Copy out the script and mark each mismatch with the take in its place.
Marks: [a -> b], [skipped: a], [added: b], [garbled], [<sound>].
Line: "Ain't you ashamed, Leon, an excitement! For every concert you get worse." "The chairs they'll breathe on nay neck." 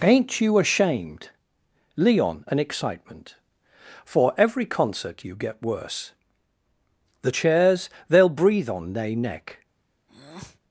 "Ain't you ashamed, Leon, an excitement! For every concert you get worse." "The chairs they'll breathe on nay neck." [breath]